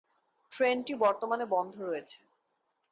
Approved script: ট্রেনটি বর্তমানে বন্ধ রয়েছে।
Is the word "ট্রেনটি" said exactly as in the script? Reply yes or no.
yes